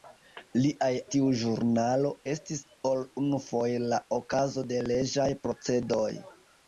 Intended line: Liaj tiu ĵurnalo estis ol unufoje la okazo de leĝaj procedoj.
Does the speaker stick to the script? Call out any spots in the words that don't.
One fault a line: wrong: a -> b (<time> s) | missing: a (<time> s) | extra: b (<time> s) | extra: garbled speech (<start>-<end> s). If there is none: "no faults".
no faults